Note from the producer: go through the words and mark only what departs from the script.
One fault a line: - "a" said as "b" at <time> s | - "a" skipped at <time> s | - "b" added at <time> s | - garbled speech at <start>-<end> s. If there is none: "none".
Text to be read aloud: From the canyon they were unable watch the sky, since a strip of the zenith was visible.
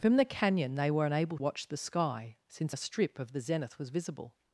none